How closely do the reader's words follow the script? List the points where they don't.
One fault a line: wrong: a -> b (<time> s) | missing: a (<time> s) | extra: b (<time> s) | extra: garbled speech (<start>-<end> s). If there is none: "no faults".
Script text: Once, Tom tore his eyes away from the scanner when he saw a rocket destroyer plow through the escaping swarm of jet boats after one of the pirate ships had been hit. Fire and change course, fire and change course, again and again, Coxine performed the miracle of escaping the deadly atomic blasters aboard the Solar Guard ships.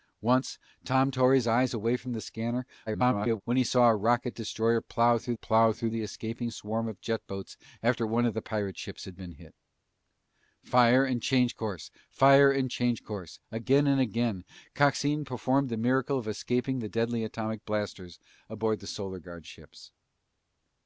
extra: garbled speech (2.9-3.4 s)
extra: plow through (5.3 s)